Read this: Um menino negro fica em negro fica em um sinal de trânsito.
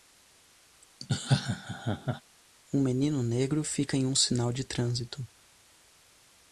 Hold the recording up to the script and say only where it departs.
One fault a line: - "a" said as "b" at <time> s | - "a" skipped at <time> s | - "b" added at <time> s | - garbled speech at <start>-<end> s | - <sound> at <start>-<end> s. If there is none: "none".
- laugh at 1.0-2.2 s
- "negro fica em" skipped at 4.0 s